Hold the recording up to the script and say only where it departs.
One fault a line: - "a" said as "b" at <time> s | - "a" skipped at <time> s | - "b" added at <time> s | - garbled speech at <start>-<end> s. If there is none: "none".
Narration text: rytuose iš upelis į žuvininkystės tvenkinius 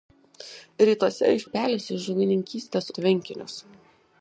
none